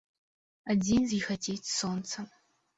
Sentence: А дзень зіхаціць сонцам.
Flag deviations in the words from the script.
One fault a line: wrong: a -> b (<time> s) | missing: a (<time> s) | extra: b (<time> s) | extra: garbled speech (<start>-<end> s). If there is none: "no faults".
no faults